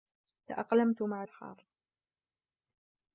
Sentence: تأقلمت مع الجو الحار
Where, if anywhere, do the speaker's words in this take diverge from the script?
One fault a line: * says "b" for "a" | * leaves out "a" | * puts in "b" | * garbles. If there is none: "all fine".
* leaves out "الجو"